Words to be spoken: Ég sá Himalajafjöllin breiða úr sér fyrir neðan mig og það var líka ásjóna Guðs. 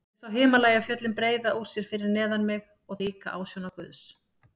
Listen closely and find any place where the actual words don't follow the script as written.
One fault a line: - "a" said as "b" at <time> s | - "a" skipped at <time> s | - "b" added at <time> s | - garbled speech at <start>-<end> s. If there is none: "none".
- "það var" skipped at 3.0 s